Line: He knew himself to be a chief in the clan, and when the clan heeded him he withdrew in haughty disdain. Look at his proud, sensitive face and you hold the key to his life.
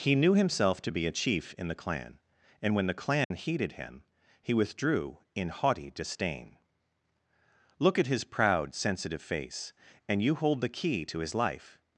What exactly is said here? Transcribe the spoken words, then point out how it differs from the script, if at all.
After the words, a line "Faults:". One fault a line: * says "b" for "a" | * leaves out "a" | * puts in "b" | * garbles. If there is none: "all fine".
He knew himself to be a chief in the clan, and when the clan heeded him he withdrew in haughty disdain. Look at his proud, sensitive face and you hold the key to his life.
Faults:
all fine